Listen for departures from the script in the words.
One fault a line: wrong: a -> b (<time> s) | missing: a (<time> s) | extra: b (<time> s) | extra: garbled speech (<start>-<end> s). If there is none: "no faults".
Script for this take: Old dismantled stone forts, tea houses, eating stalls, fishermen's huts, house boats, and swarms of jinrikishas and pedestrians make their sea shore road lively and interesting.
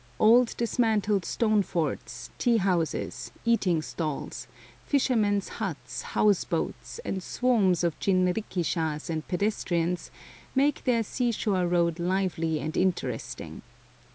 no faults